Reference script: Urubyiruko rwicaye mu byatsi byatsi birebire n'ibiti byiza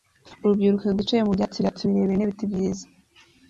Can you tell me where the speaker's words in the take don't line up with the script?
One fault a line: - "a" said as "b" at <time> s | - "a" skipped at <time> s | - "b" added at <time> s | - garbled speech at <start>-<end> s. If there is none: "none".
none